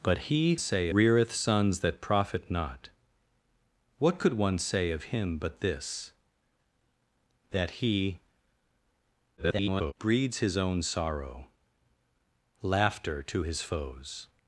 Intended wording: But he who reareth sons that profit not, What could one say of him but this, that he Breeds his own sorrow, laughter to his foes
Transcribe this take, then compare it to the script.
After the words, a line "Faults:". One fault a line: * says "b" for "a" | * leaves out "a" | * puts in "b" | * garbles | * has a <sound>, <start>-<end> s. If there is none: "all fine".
But he say reareth sons that profit not, What could one say of him but this, that he [garbled] Breeds his own sorrow, laughter to his foes
Faults:
* says "say" for "who"
* garbles